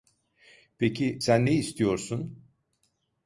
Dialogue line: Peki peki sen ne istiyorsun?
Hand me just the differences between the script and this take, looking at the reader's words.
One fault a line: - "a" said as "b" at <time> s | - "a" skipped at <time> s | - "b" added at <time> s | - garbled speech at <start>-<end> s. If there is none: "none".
- "peki" skipped at 1.2 s